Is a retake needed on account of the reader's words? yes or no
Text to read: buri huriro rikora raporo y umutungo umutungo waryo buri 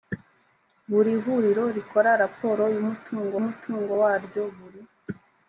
no